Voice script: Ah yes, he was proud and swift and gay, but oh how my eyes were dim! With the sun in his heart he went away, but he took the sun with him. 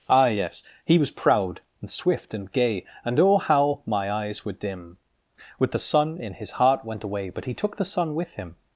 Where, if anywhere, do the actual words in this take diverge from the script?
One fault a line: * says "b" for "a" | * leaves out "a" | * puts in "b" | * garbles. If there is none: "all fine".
* says "and" for "but"
* leaves out "he"